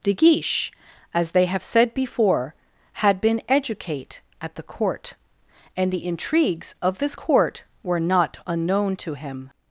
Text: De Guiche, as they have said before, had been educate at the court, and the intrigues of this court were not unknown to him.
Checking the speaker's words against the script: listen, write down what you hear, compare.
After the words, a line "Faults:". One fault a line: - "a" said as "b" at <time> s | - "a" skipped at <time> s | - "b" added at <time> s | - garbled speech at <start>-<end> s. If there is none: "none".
De Guiche, as they have said before, had been educate at the court, and the intrigues of this court were not unknown to him.
Faults:
none